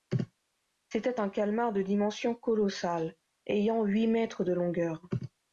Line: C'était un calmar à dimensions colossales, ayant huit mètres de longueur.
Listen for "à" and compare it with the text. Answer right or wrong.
wrong